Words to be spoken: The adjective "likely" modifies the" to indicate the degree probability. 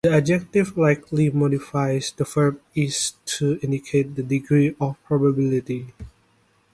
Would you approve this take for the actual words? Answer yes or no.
no